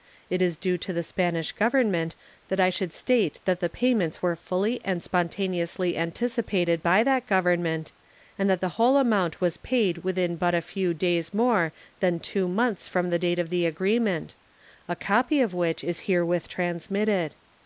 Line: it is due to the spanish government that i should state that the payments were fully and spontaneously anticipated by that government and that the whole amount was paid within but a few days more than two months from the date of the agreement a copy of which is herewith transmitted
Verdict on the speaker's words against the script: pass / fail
pass